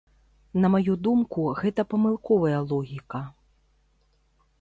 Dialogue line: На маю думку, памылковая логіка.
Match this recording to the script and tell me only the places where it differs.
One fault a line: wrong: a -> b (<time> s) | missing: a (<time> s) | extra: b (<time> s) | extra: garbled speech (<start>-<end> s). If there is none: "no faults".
extra: гэта (1.6 s)